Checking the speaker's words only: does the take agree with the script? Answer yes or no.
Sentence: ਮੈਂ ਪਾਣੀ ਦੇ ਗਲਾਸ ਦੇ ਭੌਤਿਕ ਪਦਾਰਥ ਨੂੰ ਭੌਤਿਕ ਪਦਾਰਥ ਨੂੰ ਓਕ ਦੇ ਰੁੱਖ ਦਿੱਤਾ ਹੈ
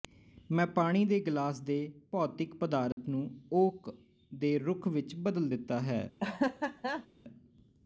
no